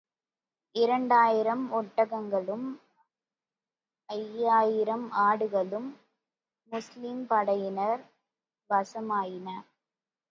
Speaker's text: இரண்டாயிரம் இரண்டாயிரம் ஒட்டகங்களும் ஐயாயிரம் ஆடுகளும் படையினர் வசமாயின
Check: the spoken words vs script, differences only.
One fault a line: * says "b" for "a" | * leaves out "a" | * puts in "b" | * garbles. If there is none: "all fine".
* leaves out "இரண்டாயிரம்"
* puts in "முஸ்லிம்"